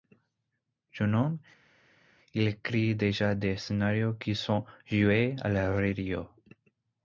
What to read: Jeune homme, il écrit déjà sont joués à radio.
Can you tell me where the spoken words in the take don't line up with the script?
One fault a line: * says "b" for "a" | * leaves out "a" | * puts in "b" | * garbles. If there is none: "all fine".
* puts in "des scénarios qui"
* puts in "la"